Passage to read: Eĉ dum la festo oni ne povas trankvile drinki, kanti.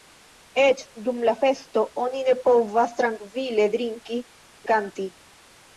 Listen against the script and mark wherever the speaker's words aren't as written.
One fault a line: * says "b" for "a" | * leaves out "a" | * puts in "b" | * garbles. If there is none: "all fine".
all fine